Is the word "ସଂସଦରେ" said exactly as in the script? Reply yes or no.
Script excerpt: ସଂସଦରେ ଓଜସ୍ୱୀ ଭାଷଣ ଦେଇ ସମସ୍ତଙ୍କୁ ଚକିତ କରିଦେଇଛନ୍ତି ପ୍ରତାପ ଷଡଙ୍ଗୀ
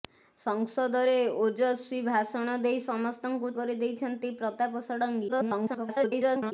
yes